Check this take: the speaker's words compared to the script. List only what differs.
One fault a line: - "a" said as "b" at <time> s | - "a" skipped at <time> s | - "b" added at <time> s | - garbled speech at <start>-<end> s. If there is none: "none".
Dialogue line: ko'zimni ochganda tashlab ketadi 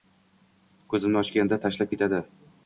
none